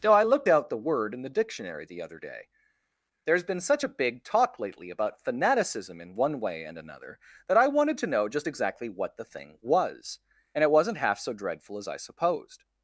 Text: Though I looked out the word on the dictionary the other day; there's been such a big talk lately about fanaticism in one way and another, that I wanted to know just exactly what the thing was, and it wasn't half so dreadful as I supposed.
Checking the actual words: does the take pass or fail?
fail